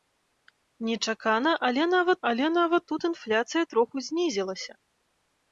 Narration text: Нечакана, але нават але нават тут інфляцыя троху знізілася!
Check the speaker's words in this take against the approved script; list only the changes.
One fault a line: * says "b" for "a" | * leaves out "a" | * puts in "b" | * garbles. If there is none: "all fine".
all fine